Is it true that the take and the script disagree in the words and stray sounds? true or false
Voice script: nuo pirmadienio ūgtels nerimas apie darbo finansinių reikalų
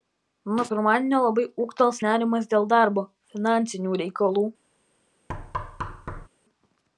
true